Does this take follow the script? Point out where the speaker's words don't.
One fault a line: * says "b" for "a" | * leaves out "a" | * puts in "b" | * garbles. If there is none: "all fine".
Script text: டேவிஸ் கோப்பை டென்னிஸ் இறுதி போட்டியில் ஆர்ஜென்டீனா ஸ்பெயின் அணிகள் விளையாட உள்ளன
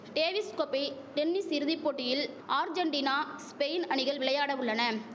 all fine